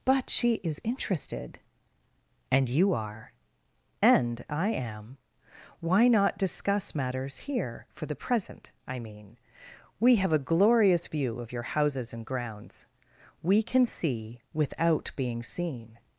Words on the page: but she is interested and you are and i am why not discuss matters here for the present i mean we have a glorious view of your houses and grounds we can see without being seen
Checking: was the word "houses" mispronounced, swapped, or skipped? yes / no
no